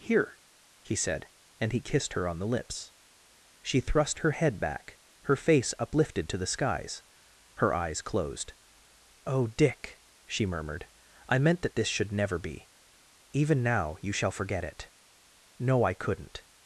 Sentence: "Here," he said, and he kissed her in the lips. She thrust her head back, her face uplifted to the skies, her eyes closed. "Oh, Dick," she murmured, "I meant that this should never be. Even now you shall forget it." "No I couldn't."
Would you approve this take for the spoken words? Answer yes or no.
no